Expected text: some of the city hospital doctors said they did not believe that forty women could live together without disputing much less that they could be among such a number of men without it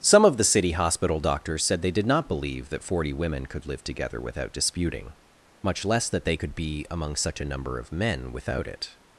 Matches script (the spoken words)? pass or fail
pass